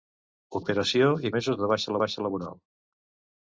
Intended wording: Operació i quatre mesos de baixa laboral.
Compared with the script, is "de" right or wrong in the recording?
right